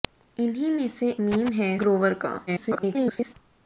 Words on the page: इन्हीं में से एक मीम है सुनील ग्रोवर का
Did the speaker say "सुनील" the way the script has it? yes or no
no